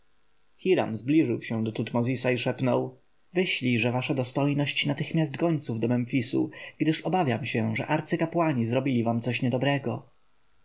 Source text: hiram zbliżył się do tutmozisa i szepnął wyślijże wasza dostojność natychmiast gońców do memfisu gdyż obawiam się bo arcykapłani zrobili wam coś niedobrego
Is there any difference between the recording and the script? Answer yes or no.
yes